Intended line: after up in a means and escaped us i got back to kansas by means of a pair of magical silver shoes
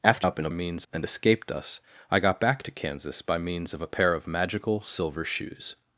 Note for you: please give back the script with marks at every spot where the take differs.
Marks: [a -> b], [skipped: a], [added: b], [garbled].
after up in a means and escaped us i got back to kansas by means of a pair of magical silver shoes